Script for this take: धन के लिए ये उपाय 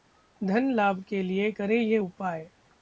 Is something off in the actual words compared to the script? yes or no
yes